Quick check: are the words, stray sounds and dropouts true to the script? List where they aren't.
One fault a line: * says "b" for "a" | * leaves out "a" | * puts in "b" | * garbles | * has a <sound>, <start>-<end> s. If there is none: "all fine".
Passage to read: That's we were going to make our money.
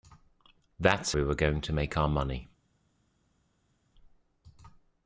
all fine